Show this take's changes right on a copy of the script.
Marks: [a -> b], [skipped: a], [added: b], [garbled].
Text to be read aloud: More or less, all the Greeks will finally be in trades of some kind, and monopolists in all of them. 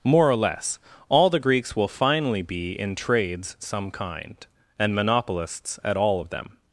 More or less, all the Greeks will finally be in trades [skipped: of] some kind, and monopolists [in -> at] all of them.